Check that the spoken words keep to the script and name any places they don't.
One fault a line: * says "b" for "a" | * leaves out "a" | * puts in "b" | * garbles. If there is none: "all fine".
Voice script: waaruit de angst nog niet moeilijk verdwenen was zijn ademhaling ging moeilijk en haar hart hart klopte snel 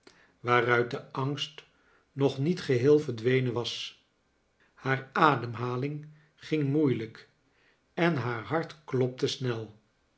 * says "geheel" for "moeilijk"
* says "haar" for "zijn"
* leaves out "hart"